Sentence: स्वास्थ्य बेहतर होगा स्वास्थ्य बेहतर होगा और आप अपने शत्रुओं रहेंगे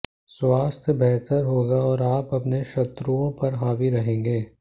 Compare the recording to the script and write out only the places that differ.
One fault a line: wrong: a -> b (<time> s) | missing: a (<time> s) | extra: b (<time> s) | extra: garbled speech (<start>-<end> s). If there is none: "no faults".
missing: स्वास्थ्य बेहतर होगा (1.8 s)
extra: पर हावी (3.4 s)